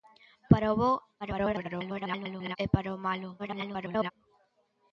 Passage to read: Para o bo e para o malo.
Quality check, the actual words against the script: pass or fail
fail